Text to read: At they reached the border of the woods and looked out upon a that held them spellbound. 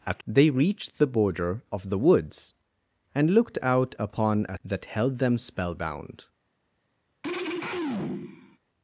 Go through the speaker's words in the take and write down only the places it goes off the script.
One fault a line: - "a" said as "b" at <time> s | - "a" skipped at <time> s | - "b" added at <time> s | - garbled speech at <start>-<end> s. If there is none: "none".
none